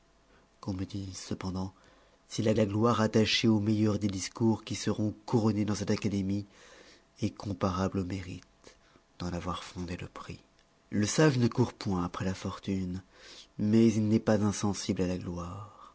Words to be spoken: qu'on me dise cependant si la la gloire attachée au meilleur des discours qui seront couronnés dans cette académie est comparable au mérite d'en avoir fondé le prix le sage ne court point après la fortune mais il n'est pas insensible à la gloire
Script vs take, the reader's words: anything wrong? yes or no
no